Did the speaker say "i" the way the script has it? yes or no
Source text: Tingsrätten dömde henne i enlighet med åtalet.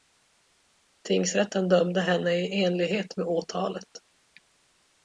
yes